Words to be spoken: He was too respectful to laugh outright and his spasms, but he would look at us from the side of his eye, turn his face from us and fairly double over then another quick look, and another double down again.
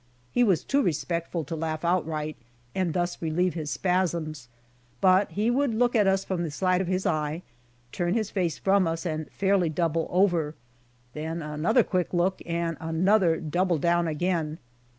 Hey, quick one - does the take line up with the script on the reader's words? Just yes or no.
no